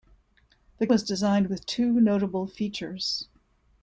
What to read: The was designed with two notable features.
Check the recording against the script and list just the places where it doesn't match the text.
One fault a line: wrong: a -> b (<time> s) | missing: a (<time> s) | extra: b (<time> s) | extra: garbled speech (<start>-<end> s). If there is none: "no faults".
no faults